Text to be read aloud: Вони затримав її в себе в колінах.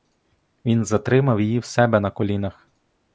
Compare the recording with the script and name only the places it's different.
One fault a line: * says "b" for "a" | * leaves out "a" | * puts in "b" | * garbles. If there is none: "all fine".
* says "Він" for "Вони"
* says "на" for "в"